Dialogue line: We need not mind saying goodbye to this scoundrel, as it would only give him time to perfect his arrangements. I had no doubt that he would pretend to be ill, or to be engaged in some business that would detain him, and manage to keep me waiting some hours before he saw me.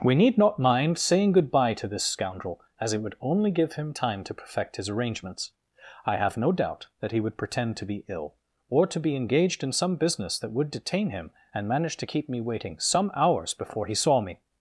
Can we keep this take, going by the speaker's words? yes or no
no